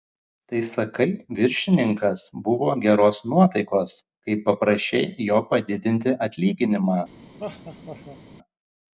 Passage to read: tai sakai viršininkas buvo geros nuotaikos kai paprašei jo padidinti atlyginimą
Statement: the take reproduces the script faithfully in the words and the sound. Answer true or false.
false